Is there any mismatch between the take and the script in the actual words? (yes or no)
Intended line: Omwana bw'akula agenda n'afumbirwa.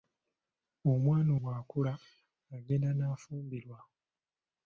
no